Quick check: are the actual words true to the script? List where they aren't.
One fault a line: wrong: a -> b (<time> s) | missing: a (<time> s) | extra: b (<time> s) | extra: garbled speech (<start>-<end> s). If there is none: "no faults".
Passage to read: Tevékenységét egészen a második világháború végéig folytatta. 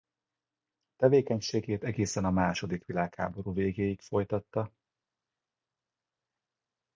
no faults